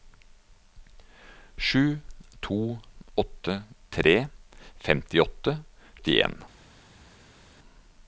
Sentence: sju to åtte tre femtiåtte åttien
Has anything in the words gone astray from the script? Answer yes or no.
no